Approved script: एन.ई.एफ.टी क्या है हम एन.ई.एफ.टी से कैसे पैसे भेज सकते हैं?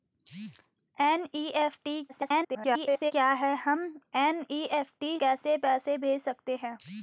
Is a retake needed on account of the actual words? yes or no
yes